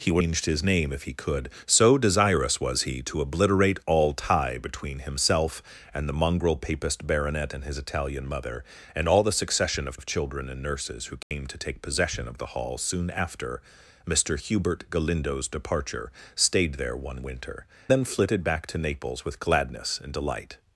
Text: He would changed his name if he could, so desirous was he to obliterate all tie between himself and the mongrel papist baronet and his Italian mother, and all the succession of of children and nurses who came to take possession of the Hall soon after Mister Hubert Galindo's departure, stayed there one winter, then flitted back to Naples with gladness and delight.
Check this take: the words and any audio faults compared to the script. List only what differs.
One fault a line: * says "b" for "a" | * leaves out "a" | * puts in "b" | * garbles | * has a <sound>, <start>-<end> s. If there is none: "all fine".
* has a dropout, 11.2-11.3 s